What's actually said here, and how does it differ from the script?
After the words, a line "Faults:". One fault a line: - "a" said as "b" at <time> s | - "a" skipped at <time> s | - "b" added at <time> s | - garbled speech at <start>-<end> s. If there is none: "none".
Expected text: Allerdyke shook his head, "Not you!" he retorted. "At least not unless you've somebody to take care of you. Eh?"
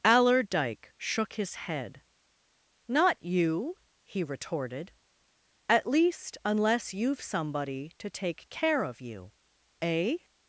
Allerdyke shook his head, "Not you!" he retorted. "At least unless you've somebody to take care of you. Eh?"
Faults:
- "not" skipped at 6.4 s